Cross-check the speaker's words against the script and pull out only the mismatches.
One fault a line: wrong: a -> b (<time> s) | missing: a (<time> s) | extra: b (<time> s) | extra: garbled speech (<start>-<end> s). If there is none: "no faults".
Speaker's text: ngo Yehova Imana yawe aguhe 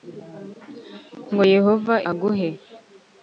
missing: Imana yawe (1.9 s)